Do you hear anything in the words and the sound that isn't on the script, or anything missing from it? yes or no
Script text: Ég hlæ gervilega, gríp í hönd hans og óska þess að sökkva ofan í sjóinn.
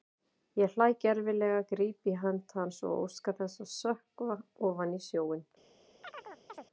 yes